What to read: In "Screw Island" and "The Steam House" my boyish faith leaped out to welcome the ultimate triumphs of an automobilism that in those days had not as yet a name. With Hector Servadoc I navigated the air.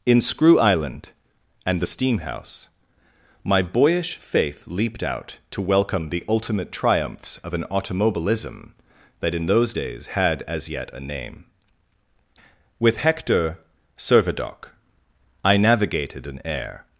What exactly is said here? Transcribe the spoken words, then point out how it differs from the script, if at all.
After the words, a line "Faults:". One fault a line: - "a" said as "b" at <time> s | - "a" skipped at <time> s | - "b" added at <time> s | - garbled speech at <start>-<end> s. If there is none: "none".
In "Screw Island" and "The Steam House" my boyish faith leaped out to welcome the ultimate triumphs of an automobilism that in those days had as yet a name. With Hector Servadoc I navigated an air.
Faults:
- "not" skipped at 10.4 s
- "the" said as "an" at 16.3 s